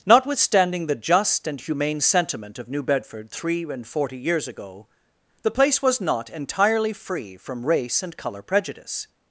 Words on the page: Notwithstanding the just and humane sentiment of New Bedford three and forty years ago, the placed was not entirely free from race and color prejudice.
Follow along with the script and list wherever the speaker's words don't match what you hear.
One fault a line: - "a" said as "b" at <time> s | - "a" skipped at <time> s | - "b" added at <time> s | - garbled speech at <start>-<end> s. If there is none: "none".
- "placed" said as "place" at 5.5 s